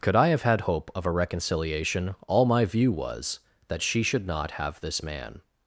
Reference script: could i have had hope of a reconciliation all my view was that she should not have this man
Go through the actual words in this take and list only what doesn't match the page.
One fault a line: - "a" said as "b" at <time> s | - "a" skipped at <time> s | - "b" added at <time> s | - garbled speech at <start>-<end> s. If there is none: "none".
none